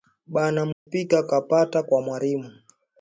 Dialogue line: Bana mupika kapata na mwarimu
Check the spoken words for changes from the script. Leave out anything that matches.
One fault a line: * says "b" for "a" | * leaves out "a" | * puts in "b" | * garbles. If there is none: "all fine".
* says "kwa" for "na"